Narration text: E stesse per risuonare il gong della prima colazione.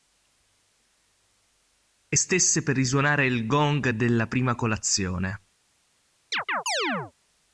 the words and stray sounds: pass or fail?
fail